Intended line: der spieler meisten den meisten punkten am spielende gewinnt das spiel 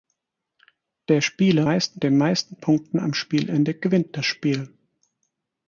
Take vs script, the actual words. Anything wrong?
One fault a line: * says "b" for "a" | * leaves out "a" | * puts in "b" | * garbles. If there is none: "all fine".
all fine